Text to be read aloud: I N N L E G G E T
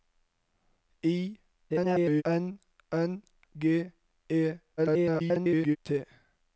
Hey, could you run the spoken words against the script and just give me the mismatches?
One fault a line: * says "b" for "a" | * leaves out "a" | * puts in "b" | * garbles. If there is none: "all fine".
* garbles
* leaves out "L E G"
* garbles